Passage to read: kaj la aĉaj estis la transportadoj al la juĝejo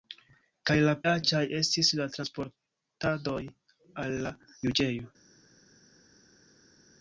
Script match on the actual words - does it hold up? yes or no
yes